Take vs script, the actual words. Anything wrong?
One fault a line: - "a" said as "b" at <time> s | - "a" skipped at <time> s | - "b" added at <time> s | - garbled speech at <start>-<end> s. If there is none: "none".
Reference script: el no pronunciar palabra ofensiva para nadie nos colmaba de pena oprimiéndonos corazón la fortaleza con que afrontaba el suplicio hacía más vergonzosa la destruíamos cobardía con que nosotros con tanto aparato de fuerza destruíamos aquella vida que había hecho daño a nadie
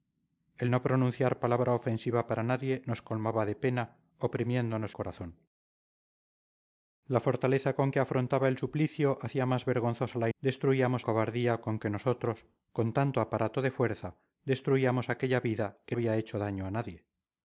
none